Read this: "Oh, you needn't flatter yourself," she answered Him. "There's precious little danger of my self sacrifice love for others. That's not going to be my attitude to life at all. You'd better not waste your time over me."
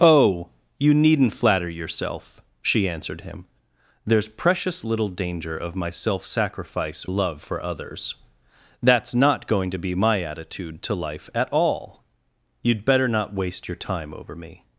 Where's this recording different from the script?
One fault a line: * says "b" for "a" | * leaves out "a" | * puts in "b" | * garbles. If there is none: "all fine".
all fine